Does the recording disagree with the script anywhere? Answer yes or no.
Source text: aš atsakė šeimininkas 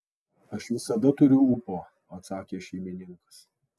yes